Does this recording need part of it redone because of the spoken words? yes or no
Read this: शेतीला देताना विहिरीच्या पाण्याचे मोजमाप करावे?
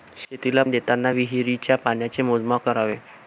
no